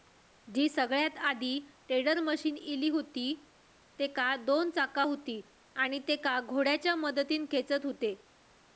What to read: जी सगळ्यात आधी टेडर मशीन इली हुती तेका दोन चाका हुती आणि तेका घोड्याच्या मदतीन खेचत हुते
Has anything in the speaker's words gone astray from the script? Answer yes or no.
no